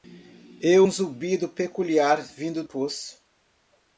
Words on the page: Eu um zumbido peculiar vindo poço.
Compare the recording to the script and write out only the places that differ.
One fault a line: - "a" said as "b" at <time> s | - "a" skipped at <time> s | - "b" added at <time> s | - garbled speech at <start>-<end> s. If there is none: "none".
none